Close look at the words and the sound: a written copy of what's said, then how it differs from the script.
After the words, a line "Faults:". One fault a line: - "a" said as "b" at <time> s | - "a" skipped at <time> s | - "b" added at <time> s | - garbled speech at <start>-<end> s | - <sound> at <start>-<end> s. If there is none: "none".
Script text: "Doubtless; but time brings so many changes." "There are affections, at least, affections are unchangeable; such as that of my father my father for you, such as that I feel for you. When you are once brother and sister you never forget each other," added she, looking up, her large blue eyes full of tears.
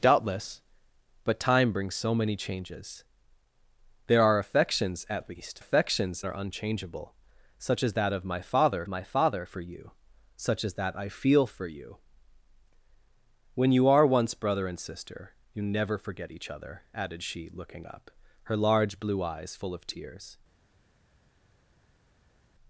"Doubtless; but time brings so many changes." "There are affections, at least, affections are unchangeable; such as that of my father my father for you, such as that I feel for you. When you are once brother and sister you never forget each other," added she, looking up, her large blue eyes full of tears.
Faults:
none